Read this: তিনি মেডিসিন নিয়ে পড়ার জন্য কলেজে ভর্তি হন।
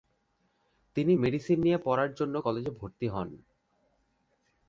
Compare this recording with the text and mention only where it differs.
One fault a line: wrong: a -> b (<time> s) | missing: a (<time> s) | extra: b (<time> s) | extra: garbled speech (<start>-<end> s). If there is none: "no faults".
no faults